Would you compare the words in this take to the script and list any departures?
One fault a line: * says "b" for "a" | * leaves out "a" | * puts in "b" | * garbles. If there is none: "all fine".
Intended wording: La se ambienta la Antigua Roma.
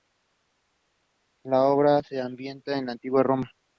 * puts in "obra"
* puts in "en"